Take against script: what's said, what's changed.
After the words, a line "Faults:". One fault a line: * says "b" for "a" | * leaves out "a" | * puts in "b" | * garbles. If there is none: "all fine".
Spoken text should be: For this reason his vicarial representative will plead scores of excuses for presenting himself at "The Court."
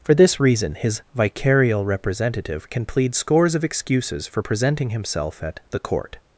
For this reason his vicarial representative can plead scores of excuses for presenting himself at "The Court."
Faults:
* says "can" for "will"